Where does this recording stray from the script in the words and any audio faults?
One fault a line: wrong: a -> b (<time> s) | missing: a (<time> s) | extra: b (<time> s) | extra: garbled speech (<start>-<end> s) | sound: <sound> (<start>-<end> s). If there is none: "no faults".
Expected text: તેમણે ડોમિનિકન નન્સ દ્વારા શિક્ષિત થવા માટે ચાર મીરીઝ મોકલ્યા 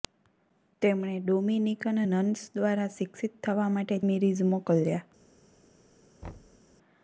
missing: ચાર (4.0 s)
sound: thud (6.2-6.6 s)